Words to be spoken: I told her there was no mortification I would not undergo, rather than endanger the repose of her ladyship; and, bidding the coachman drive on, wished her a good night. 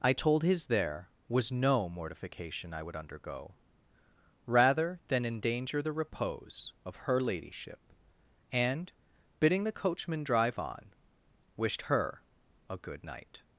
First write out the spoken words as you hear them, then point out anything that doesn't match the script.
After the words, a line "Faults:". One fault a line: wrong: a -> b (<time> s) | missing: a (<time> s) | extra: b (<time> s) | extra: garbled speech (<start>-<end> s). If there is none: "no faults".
I told his there was no mortification I would undergo, rather than endanger the repose of her ladyship; and, bidding the coachman drive on, wished her a good night.
Faults:
wrong: her -> his (0.4 s)
missing: not (3.0 s)